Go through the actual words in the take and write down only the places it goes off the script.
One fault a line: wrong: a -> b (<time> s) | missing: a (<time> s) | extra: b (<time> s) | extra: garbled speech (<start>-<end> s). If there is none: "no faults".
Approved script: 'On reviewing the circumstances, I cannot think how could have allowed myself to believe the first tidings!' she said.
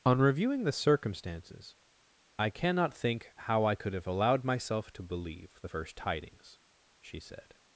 extra: I (3.6 s)